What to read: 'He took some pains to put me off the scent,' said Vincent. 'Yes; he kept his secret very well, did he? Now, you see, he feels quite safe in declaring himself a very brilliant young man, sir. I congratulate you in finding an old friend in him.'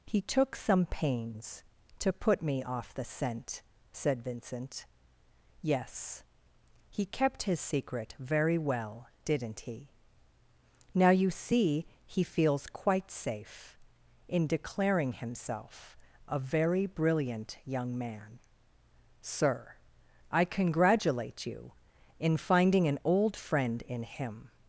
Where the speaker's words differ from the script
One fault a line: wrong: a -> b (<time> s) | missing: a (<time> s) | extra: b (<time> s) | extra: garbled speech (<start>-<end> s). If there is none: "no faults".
wrong: did -> didn't (9.2 s)